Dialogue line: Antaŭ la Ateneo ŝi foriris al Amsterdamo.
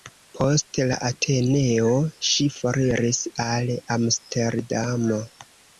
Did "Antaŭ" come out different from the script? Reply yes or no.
yes